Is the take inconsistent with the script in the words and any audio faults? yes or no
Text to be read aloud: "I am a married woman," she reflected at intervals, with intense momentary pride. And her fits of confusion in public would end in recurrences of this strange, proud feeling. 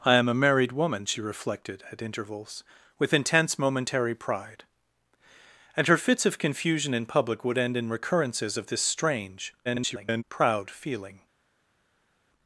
yes